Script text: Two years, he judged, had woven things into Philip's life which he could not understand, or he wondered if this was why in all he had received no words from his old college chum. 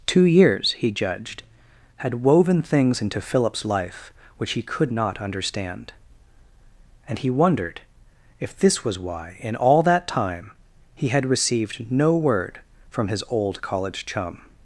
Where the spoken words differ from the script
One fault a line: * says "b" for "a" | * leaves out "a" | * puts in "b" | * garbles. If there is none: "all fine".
* says "and" for "or"
* puts in "that time"
* says "word" for "words"